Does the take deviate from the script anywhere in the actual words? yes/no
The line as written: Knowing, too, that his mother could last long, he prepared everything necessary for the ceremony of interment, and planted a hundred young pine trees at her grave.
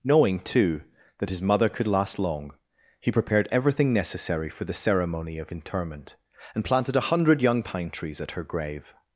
no